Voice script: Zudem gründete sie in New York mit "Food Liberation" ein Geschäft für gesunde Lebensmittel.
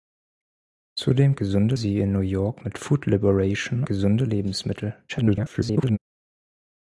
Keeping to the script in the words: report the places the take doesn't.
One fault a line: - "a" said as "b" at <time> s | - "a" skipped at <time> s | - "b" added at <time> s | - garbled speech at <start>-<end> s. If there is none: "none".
- "gründete" said as "gesunde" at 1.3 s
- "ein Geschäft für" skipped at 3.8 s
- garbled speech at 5.1-6.0 s